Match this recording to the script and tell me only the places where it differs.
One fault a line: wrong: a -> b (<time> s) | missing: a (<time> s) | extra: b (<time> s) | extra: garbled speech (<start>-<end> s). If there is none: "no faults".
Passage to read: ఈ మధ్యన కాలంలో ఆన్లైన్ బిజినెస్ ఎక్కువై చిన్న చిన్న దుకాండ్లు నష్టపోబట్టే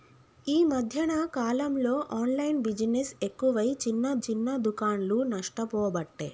no faults